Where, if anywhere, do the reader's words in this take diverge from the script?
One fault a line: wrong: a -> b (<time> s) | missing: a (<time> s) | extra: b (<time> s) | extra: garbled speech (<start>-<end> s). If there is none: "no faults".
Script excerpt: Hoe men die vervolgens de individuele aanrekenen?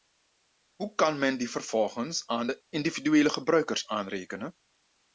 extra: kan (0.9 s)
extra: aan (2.3 s)
extra: gebruikers (3.3 s)